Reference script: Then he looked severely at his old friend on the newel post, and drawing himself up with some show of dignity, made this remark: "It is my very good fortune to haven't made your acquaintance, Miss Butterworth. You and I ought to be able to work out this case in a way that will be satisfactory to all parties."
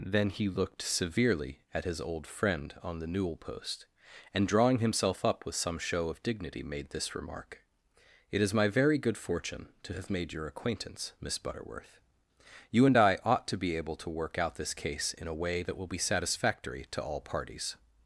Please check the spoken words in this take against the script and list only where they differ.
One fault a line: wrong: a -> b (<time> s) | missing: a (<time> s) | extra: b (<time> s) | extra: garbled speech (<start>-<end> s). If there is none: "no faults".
wrong: haven't -> have (9.9 s)